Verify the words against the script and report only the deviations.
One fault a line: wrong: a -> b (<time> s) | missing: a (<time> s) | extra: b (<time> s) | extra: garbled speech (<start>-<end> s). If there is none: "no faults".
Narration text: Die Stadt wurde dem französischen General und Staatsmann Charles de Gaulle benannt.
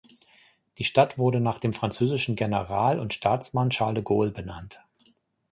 extra: nach (1.4 s)